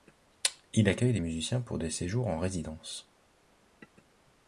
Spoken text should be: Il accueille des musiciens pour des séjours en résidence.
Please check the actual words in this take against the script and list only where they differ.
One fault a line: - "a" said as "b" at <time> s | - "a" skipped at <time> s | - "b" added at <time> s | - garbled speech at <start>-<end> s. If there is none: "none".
none